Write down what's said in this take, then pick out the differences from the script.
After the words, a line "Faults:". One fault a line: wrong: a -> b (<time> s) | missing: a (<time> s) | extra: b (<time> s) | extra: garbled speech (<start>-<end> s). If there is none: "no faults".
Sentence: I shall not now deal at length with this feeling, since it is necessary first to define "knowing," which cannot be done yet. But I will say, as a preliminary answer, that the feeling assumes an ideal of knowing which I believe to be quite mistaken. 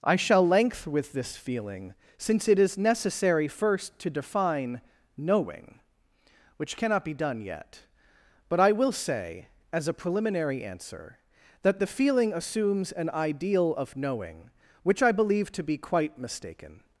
I shall length with this feeling, since it is necessary first to define "knowing," which cannot be done yet. But I will say, as a preliminary answer, that the feeling assumes an ideal of knowing which I believe to be quite mistaken.
Faults:
missing: not now deal at (0.5 s)